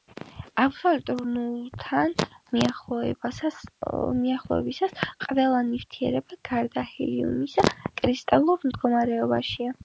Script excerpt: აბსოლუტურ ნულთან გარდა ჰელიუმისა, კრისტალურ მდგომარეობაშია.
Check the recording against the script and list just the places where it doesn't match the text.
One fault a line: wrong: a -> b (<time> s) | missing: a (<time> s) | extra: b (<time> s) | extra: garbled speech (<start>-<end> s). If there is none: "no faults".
extra: მიახლოებისას ყველა ნივთიერება (2.6 s)